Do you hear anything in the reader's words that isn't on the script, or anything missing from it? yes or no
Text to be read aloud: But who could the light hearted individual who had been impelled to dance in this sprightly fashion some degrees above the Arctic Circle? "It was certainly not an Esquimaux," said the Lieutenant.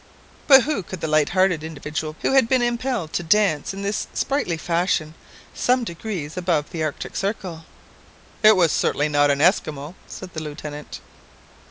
no